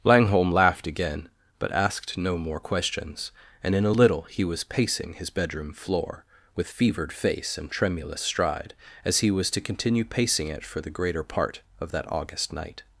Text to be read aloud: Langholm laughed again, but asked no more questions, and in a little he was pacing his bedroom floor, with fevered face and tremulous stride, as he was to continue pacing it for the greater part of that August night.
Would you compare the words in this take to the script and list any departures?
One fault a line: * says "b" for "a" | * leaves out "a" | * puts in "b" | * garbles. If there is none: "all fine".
all fine